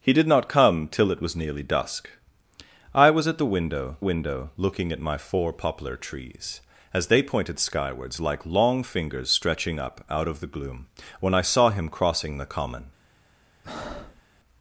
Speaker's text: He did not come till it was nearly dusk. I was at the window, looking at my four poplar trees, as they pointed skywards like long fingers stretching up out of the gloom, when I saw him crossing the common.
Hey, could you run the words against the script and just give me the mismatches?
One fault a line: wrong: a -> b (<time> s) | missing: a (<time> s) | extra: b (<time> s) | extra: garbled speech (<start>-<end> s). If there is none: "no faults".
extra: window (4.0 s)